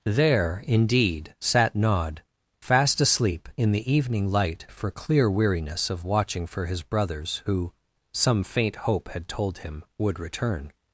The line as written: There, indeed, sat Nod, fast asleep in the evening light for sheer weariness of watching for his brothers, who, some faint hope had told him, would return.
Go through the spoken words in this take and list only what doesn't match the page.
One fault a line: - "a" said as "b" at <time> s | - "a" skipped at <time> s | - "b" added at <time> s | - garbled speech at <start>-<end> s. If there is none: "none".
- "sheer" said as "clear" at 4.9 s